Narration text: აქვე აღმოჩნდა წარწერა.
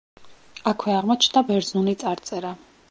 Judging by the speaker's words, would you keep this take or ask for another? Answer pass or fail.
fail